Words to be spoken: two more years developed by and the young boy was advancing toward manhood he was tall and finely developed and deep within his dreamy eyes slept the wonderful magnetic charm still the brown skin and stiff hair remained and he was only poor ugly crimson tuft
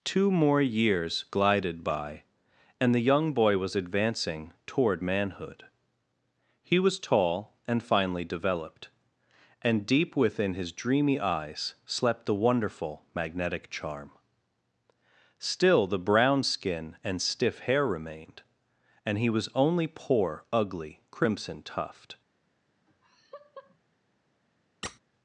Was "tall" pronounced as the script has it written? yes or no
yes